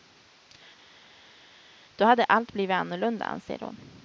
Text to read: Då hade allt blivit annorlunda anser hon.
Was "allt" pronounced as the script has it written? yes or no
yes